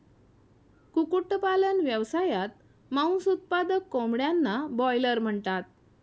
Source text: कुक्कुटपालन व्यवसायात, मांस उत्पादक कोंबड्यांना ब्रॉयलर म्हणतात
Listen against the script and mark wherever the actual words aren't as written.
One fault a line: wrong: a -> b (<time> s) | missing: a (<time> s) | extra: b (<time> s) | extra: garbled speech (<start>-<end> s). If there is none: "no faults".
no faults